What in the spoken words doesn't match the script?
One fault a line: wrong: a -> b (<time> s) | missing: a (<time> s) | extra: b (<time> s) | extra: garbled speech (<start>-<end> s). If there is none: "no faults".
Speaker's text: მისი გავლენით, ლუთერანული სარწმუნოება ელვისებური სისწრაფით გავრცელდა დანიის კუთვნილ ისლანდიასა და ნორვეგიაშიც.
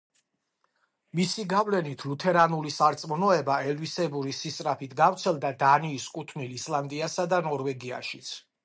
no faults